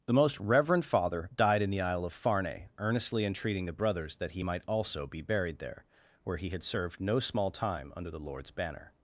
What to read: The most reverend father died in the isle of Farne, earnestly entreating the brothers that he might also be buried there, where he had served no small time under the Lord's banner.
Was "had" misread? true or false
false